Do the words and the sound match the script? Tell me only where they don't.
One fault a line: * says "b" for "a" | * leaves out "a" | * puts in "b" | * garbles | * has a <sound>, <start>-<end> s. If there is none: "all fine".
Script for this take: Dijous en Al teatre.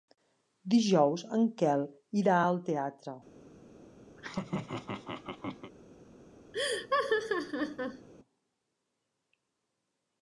* puts in "Quel irà"
* has a laugh, 4.2-5.7 s
* has a laugh, 6.5-8.1 s